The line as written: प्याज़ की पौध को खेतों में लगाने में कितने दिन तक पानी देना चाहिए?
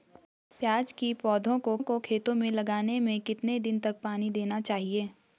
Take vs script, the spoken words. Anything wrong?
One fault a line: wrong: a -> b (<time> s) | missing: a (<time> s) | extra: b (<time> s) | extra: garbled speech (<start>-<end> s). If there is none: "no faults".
extra: को (1.8 s)